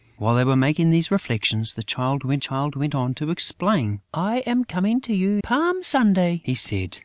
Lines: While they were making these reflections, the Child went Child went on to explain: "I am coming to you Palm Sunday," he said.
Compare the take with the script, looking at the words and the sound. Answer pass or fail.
pass